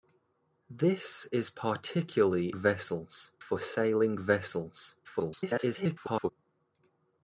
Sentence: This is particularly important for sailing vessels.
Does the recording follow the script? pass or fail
fail